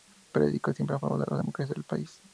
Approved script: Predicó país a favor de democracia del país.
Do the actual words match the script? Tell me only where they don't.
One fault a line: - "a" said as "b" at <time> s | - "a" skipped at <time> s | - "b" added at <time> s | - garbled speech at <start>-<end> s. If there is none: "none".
- "país" said as "siempre" at 0.7 s
- "la" added at 1.3 s